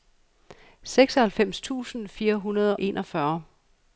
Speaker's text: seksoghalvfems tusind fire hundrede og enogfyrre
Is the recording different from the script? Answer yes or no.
yes